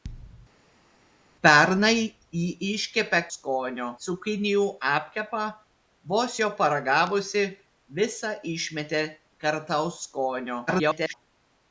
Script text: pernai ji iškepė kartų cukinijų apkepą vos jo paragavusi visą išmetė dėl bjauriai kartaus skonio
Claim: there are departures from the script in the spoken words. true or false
true